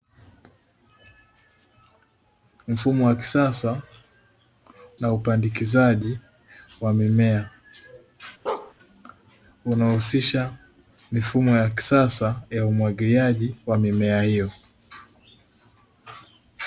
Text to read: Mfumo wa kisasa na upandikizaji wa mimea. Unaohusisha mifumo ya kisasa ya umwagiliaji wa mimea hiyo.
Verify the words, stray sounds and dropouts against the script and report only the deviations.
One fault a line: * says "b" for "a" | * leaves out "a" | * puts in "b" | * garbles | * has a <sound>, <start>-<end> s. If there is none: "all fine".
* has a bark, 8.5-8.7 s